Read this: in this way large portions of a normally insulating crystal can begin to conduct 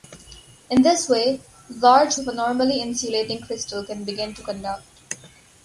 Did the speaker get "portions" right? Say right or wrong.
wrong